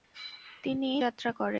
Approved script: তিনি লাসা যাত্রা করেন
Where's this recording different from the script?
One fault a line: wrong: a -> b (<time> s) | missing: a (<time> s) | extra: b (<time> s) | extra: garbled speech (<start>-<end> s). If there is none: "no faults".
missing: লাসা (0.9 s)